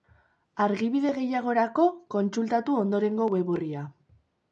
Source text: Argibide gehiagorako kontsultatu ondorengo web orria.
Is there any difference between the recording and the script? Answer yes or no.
no